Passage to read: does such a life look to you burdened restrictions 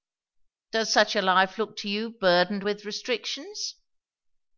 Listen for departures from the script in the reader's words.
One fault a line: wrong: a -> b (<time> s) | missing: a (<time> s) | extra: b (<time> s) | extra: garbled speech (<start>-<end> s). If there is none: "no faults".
extra: with (2.6 s)